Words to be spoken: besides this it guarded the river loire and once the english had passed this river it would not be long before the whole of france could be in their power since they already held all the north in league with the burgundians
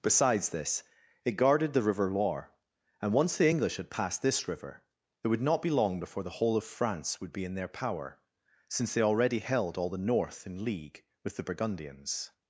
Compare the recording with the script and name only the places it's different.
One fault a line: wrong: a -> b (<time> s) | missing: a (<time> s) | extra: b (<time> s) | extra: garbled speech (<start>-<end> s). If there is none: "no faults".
wrong: could -> would (7.2 s)